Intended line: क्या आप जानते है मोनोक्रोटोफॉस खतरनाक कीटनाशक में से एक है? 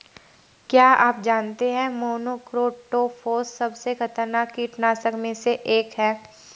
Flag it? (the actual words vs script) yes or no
yes